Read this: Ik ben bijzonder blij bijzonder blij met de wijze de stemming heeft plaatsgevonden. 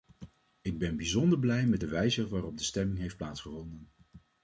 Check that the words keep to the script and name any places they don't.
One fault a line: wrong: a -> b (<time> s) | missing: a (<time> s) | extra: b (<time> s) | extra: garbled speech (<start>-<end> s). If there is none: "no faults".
missing: bijzonder blij (1.6 s)
extra: waarop (2.3 s)